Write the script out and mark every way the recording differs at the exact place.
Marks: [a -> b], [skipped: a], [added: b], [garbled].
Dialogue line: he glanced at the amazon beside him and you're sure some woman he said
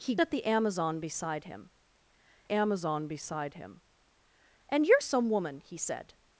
he [skipped: glanced] at the amazon beside him [added: amazon beside him] and you're [skipped: sure] some woman he said